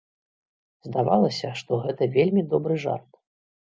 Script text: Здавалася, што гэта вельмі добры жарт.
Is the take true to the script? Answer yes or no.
yes